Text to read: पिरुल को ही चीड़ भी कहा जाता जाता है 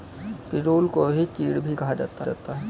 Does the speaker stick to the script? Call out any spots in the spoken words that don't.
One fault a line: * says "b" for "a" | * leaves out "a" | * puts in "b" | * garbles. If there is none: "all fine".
all fine